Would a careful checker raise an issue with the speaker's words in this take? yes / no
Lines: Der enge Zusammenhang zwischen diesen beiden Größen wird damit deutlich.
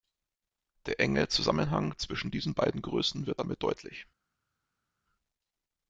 no